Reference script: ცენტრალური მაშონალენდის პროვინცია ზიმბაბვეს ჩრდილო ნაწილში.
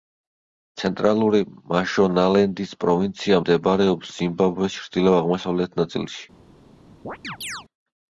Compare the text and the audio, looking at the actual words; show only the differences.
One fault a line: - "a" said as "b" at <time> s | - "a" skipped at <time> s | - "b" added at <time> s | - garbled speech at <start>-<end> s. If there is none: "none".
- "მდებარეობს" added at 3.4 s
- "აღმოსავლეთ" added at 5.2 s